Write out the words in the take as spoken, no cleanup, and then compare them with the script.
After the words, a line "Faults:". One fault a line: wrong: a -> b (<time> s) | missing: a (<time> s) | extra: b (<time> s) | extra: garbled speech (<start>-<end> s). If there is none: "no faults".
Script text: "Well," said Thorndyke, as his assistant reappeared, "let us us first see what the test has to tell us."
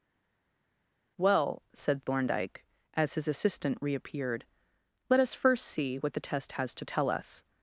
"Well," said Thorndyke, as his assistant reappeared, "let us first see what the test has to tell us."
Faults:
missing: us (5.3 s)